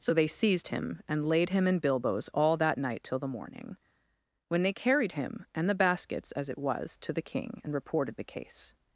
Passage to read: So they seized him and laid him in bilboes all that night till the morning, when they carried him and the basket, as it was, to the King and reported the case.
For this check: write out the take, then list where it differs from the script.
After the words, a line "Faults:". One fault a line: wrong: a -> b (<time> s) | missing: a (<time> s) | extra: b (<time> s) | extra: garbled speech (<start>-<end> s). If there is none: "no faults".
So they seized him and laid him in bilboes all that night till the morning, when they carried him and the baskets, as it was, to the King and reported the case.
Faults:
wrong: basket -> baskets (5.8 s)